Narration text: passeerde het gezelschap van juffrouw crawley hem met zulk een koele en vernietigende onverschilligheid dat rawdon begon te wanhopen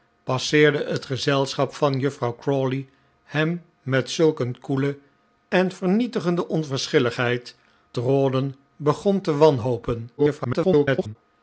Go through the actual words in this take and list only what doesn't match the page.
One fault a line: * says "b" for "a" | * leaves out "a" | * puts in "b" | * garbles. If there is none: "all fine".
* leaves out "dat"
* garbles